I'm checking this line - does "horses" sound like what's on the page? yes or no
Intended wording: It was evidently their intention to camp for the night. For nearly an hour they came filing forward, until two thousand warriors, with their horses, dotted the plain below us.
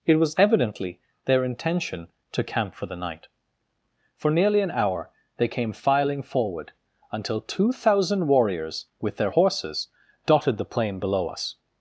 yes